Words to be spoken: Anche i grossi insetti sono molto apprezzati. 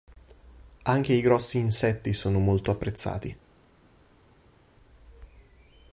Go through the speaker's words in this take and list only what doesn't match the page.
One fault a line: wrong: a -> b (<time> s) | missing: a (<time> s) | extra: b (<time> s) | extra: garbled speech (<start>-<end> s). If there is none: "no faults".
no faults